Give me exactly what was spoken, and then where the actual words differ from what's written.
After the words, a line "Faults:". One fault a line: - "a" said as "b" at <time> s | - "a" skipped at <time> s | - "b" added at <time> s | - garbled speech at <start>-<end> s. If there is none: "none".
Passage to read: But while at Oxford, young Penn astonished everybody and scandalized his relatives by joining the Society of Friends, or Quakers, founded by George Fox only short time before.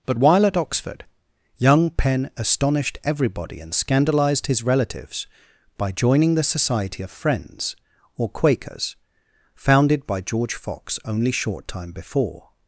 But while at Oxford, young Penn astonished everybody and scandalized his relatives by joining the Society of Friends, or Quakers, founded by George Fox only short time before.
Faults:
none